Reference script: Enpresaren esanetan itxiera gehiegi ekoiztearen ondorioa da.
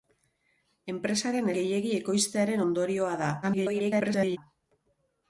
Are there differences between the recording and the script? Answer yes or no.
yes